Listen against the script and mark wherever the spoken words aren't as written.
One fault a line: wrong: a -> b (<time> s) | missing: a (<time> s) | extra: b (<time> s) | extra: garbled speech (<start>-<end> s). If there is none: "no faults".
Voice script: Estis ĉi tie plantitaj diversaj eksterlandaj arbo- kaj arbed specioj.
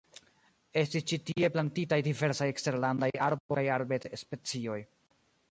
no faults